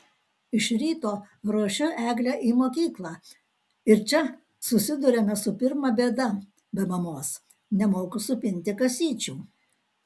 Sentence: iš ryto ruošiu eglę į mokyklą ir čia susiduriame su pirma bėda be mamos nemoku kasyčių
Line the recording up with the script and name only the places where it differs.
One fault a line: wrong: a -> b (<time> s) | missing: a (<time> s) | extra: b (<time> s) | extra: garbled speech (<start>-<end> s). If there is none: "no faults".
extra: supinti (8.3 s)